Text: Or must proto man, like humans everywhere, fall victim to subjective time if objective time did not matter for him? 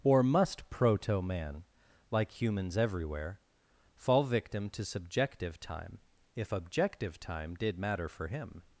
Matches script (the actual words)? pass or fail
fail